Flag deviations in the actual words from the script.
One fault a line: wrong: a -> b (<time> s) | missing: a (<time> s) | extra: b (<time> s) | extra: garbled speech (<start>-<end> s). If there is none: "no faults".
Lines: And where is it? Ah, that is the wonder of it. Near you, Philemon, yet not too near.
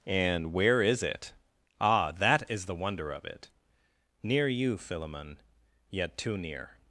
missing: not (6.2 s)